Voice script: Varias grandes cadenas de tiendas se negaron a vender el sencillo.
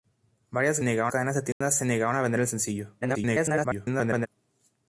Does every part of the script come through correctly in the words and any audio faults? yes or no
no